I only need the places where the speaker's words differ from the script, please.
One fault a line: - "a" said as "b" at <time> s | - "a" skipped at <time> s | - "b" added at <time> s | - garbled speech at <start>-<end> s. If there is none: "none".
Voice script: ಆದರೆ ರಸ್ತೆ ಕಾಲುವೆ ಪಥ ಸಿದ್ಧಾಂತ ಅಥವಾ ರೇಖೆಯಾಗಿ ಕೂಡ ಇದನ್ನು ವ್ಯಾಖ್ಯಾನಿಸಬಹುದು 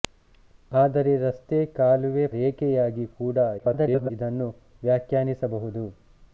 - "ಪಥ ಸಿದ್ಧಾಂತ ಅಥವಾ" skipped at 2.2 s
- garbled speech at 3.6-4.1 s